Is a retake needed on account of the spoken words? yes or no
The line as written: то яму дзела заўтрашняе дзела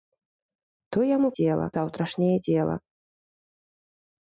no